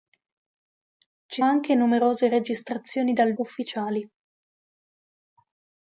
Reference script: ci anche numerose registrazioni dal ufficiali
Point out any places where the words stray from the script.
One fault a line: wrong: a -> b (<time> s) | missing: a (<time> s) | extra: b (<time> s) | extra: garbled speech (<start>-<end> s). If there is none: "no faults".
no faults